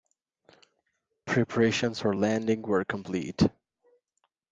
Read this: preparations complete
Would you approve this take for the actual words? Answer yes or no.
no